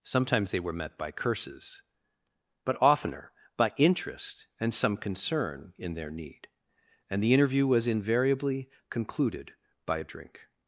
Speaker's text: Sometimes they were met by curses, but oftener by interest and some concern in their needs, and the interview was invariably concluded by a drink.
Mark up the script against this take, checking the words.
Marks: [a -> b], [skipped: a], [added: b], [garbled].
Sometimes they were met by curses, but oftener by interest and some concern in their [needs, -> need] and the interview was invariably concluded by a drink.